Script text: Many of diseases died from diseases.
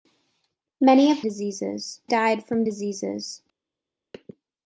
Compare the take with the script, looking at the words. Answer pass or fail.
pass